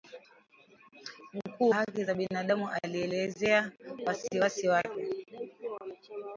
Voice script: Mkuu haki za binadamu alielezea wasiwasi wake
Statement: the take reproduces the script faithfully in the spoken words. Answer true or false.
true